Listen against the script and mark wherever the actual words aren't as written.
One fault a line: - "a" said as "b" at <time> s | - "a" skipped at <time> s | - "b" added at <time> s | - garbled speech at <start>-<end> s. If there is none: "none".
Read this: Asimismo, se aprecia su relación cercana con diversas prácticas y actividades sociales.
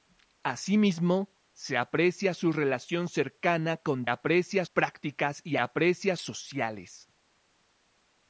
- "diversas" said as "aprecia" at 4.1 s
- "actividades" said as "aprecia" at 5.6 s